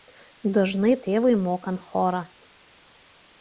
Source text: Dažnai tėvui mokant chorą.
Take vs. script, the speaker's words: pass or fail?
pass